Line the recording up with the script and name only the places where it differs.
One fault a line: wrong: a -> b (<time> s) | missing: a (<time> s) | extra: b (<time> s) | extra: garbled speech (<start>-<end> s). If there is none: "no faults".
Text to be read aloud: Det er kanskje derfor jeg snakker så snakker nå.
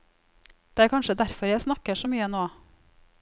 wrong: snakker -> mye (2.1 s)